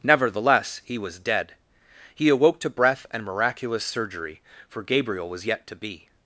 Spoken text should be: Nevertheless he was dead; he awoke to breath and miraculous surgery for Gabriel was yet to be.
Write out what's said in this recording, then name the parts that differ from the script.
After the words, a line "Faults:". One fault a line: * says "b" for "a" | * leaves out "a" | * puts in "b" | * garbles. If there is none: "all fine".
Nevertheless he was dead; he awoke to breath and miraculous surgery for Gabriel was yet to be.
Faults:
all fine